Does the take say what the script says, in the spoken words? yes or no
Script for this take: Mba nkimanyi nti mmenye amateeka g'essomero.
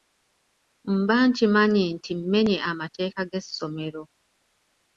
yes